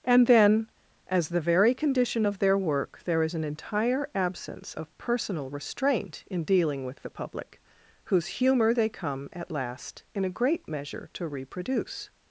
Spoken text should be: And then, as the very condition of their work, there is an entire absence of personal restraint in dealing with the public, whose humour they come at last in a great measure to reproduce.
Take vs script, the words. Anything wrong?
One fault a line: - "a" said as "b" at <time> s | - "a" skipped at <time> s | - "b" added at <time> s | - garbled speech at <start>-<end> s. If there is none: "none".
none